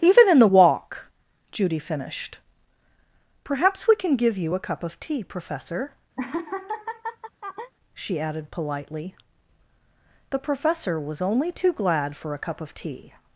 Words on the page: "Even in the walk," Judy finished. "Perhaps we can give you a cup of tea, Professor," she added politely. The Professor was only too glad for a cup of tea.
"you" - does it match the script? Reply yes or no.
yes